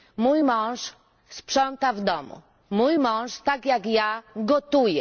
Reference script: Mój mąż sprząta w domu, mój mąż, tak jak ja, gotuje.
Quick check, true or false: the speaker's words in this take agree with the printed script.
true